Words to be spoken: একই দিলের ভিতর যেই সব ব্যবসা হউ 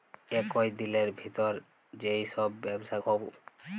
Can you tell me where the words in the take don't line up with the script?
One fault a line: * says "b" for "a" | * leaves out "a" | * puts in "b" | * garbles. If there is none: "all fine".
all fine